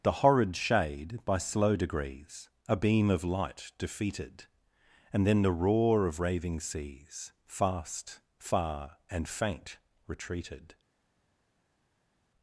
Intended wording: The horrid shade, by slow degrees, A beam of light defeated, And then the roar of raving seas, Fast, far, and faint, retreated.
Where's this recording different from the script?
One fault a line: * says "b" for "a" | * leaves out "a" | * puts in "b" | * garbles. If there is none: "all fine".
all fine